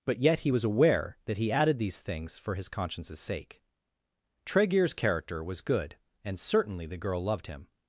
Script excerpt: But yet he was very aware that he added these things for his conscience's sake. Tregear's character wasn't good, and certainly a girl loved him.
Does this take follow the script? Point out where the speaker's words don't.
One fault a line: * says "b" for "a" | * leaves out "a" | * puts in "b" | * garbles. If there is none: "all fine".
* leaves out "very"
* says "was" for "wasn't"
* says "the" for "a"